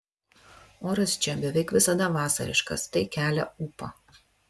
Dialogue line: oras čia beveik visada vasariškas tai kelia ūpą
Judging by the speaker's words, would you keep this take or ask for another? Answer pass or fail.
pass